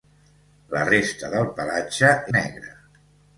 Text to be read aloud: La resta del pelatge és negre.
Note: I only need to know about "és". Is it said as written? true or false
false